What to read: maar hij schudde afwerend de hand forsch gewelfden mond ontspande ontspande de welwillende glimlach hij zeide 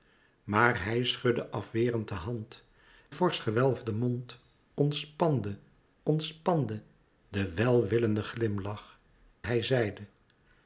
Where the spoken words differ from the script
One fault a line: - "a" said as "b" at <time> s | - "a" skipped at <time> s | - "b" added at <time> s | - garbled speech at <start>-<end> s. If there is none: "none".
none